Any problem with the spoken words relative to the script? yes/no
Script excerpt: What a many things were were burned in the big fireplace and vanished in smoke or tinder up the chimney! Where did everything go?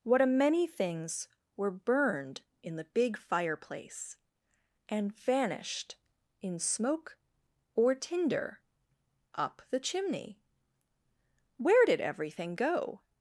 yes